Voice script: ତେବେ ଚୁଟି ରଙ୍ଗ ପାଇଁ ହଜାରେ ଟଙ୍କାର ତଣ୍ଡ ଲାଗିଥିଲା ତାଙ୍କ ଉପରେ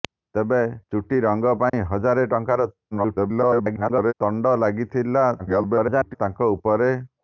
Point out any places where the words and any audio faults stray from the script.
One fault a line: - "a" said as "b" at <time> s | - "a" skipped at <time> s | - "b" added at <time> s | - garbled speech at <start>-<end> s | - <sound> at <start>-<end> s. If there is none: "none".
- dropout at 1.7-1.7 s
- garbled speech at 2.9-4.1 s
- garbled speech at 5.4-6.1 s